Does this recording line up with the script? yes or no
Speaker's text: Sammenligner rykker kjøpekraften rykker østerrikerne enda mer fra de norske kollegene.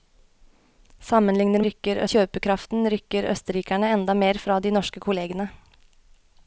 yes